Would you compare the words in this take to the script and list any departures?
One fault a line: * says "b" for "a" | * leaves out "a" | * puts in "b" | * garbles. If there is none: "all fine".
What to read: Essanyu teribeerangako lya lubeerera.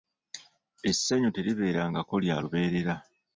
all fine